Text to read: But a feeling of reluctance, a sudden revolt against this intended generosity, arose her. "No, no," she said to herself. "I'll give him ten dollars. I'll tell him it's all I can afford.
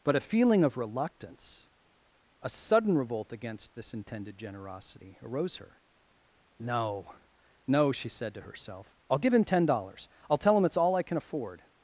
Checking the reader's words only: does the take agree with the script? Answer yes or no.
yes